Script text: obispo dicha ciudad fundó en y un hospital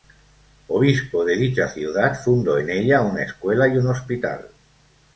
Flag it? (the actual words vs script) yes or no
yes